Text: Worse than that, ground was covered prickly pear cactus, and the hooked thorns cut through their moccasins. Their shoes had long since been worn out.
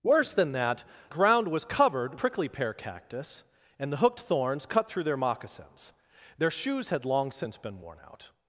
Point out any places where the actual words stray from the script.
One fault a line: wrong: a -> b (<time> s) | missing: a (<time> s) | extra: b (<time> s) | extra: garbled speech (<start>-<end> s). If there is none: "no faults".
no faults